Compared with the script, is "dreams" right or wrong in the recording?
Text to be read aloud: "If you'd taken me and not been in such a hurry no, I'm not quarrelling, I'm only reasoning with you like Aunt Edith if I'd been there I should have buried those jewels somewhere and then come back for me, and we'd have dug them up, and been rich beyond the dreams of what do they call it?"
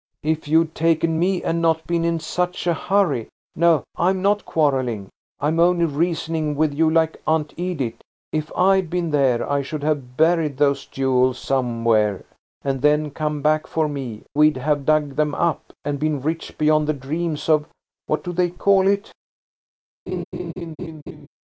right